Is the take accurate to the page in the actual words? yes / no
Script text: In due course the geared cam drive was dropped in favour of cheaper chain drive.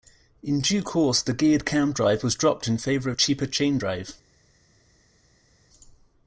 yes